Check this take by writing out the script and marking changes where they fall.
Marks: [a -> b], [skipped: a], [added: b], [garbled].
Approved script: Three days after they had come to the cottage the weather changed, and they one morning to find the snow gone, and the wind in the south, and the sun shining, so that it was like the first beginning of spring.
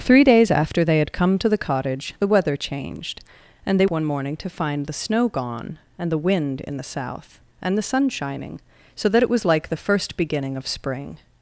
Three days after they had come to the cottage the weather changed, and they one morning to find the snow gone, and the wind in the south, and the sun shining, so that it was like the first beginning of spring.